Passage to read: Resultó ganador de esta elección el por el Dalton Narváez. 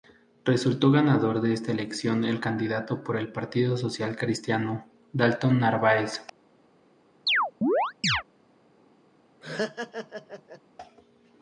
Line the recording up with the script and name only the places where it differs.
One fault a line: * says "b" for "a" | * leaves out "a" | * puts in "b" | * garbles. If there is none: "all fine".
* puts in "candidato"
* puts in "Partido Social Cristiano"